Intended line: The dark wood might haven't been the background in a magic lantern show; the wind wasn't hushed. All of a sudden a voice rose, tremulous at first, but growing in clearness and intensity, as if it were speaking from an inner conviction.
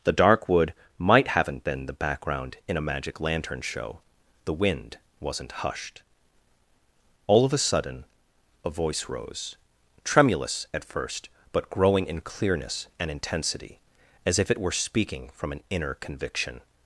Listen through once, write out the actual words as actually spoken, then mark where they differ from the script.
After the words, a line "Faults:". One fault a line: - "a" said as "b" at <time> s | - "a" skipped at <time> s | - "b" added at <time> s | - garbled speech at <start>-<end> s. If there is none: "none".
The dark wood might haven't been the background in a magic lantern show; the wind wasn't hushed. All of a sudden a voice rose, tremulous at first, but growing in clearness and intensity, as if it were speaking from an inner conviction.
Faults:
none